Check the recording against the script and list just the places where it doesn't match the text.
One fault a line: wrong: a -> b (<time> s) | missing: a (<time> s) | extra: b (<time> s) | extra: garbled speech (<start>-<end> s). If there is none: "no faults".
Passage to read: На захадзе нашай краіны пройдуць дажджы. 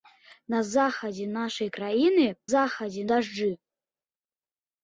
wrong: пройдуць -> захадзе (2.5 s)